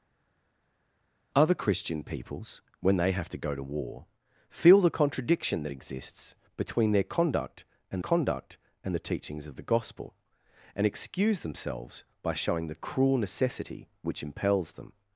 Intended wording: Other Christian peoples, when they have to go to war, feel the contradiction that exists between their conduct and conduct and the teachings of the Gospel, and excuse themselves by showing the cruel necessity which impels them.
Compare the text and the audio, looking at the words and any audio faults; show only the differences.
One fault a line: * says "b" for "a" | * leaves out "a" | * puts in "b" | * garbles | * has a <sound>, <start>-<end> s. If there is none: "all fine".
all fine